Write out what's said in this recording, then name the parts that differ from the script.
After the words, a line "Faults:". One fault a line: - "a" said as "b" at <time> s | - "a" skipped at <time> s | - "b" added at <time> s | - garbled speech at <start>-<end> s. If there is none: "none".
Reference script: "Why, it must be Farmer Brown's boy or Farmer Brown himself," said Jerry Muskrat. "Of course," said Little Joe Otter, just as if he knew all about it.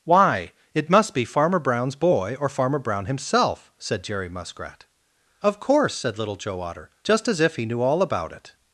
"Why, it must be Farmer Brown's boy or Farmer Brown himself," said Jerry Muskrat. "Of course," said Little Joe Otter, just as if he knew all about it.
Faults:
none